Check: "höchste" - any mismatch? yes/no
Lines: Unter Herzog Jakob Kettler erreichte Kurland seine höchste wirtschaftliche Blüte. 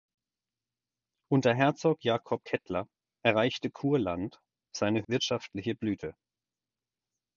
yes